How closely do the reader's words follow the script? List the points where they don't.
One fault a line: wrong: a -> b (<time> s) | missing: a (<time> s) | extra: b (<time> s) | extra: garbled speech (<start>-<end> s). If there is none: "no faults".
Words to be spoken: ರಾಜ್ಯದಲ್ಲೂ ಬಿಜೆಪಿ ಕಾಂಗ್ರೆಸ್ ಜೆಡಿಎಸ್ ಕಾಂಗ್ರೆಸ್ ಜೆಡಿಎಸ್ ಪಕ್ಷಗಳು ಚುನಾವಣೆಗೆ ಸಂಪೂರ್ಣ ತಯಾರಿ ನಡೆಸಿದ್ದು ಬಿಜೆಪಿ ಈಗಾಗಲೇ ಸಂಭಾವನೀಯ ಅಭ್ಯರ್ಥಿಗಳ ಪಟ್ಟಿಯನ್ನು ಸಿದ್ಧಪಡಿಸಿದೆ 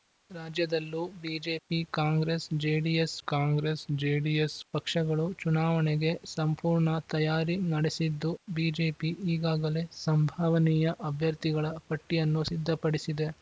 no faults